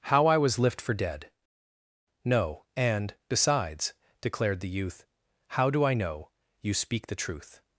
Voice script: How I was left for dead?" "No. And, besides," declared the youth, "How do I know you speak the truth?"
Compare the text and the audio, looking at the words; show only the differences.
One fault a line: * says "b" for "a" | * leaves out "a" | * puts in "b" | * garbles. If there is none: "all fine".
* says "lift" for "left"